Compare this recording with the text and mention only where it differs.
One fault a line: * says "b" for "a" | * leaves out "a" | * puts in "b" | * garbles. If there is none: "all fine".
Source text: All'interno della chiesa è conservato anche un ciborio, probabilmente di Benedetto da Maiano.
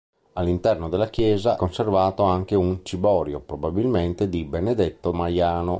* leaves out "è"
* leaves out "da"